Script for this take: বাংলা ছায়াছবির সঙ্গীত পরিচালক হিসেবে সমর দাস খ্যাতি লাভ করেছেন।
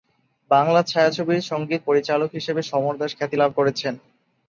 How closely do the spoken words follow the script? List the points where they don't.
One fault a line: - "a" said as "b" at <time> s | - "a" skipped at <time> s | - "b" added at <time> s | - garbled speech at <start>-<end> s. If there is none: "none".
none